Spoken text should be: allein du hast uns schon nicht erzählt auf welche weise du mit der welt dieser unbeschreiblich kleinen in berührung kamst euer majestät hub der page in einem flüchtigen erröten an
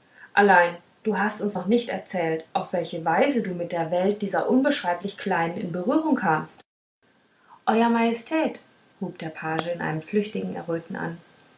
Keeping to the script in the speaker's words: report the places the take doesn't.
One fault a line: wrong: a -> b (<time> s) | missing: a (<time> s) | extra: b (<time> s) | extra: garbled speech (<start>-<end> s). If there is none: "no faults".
wrong: schon -> noch (1.5 s)